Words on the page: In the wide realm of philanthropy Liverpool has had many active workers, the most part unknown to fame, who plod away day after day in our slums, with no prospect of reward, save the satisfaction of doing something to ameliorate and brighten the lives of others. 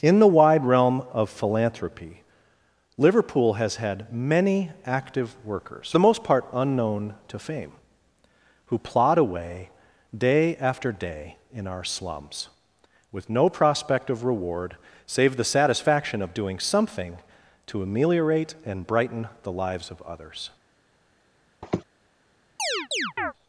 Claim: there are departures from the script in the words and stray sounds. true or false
true